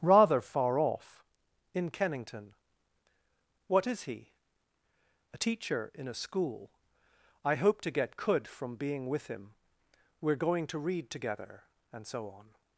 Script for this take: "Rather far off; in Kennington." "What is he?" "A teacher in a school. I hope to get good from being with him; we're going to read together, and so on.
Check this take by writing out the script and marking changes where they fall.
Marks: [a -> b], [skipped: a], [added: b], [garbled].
"Rather far off; in Kennington." "What is he?" "A teacher in a school. I hope to get [good -> could] from being with him; we're going to read together, and so on.